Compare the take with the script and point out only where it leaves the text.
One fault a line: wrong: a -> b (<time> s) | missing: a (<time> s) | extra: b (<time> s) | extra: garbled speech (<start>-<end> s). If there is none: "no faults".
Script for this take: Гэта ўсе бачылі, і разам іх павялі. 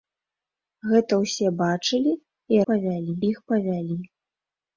wrong: разам -> павялі (2.7 s)